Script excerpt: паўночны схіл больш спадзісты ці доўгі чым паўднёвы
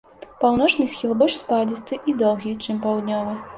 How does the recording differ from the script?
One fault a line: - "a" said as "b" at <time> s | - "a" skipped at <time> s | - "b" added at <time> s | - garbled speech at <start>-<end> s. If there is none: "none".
- "ці" said as "і" at 2.1 s